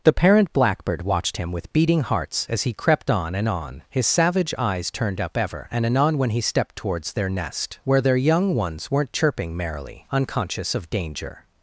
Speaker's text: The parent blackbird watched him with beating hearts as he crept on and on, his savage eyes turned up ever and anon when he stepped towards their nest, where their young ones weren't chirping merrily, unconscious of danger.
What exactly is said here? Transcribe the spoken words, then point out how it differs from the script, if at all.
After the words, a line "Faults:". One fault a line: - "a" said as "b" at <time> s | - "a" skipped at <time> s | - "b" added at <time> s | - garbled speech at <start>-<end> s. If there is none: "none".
The parent blackbird watched him with beating hearts as he crept on and on, his savage eyes turned up ever and anon when he stepped towards their nest, where their young ones weren't chirping merrily, unconscious of danger.
Faults:
none